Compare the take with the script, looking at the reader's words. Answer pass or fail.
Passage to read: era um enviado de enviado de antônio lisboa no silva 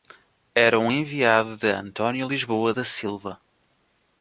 fail